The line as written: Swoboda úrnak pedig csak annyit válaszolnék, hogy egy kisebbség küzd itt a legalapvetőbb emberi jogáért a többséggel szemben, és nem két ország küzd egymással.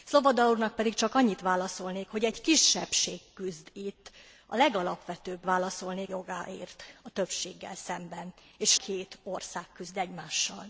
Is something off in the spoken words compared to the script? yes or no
yes